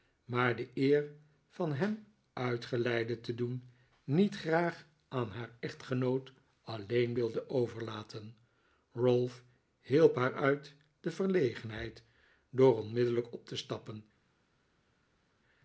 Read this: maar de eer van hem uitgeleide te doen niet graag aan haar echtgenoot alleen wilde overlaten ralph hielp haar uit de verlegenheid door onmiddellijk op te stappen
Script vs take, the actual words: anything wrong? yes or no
no